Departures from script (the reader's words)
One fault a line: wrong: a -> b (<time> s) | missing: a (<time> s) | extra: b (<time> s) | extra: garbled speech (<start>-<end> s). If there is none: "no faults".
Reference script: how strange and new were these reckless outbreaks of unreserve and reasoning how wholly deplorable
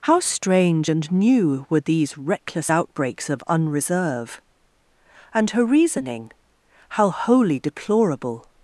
extra: her (5.5 s)